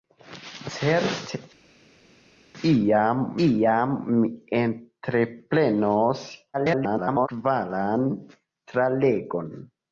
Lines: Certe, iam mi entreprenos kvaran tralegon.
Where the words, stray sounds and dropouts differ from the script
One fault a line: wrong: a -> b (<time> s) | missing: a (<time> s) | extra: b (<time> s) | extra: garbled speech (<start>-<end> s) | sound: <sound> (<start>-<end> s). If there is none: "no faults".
extra: iam (3.4 s)
extra: garbled speech (6.5-7.3 s)